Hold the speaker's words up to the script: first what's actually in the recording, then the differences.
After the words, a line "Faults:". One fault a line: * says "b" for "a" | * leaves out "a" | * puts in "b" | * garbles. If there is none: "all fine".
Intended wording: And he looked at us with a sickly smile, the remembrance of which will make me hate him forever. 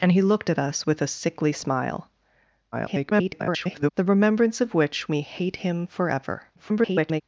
And he looked at us with a sickly smile, [garbled] the remembrance of which me hate him forever. [garbled]
Faults:
* garbles
* leaves out "will make"
* garbles